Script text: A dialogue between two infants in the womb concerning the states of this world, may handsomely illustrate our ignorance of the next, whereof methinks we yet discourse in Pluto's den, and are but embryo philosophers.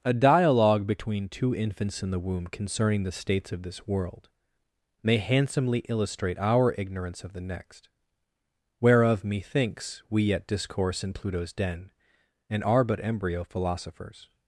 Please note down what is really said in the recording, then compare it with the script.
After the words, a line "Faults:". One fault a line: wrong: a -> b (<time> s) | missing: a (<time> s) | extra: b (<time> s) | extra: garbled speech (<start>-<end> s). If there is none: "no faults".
A dialogue between two infants in the womb concerning the states of this world, may handsomely illustrate our ignorance of the next, whereof methinks we yet discourse in Pluto's den, and are but embryo philosophers.
Faults:
no faults